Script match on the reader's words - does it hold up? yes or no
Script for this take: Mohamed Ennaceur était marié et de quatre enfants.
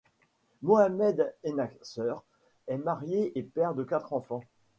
no